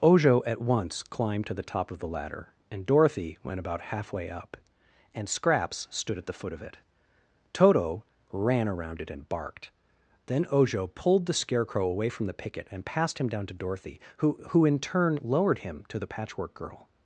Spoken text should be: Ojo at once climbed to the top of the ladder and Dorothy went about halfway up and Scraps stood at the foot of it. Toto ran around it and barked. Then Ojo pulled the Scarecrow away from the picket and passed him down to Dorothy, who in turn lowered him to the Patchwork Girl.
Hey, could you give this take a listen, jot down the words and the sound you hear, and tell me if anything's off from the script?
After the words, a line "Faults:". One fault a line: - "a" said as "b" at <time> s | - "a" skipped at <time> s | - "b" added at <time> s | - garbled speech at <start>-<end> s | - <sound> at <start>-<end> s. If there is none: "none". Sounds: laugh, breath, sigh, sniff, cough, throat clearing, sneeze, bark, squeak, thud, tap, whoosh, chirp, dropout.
Ojo at once climbed to the top of the ladder and Dorothy went about halfway up and Scraps stood at the foot of it. Toto ran around it and barked. Then Ojo pulled the Scarecrow away from the picket and passed him down to Dorothy, who who in turn lowered him to the Patchwork Girl.
Faults:
- "who" added at 14.5 s